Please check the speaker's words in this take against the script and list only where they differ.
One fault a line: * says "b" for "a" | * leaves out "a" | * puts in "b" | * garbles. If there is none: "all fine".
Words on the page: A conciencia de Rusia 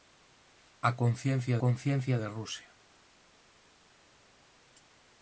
* puts in "conciencia"